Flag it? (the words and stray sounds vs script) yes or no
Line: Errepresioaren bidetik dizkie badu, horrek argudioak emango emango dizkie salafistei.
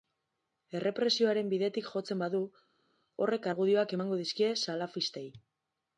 yes